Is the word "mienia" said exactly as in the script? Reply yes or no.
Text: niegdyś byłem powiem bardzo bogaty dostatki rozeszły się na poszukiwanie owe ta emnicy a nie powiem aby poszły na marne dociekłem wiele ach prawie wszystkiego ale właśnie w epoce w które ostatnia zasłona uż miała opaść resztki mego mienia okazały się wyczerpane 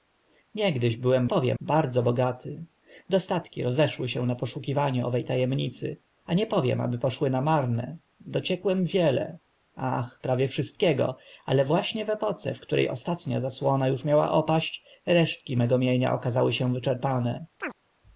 yes